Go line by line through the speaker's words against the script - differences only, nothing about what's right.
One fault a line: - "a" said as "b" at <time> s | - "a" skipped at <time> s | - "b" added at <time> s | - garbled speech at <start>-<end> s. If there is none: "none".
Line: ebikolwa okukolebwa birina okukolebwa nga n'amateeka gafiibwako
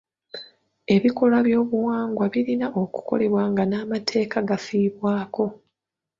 - "okukolebwa" said as "by'obuwangwa" at 1.5 s